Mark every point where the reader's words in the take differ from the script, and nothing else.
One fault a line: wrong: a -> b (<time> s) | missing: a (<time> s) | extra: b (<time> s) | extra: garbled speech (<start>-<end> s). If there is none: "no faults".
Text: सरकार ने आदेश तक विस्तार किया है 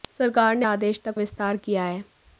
no faults